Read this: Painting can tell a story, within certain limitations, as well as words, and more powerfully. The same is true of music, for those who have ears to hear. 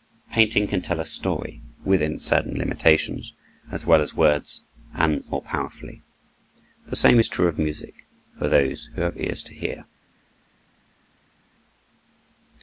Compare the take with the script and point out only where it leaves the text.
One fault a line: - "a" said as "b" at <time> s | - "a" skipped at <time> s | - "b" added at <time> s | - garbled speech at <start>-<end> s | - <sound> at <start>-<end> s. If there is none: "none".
none